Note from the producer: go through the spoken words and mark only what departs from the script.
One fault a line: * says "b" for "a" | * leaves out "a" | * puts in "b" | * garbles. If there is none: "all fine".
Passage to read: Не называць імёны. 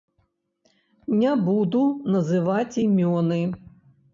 * puts in "буду"